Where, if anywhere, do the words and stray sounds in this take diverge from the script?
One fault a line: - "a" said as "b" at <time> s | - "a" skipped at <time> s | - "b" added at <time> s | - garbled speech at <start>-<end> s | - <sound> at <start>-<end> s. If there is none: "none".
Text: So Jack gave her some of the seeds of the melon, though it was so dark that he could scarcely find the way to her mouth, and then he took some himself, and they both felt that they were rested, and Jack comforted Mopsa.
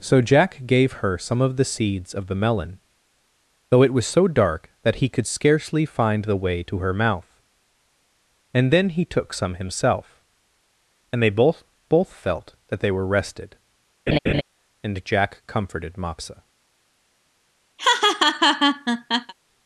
- "both" added at 11.9 s
- laugh at 14.1-14.4 s
- laugh at 17.8-19.3 s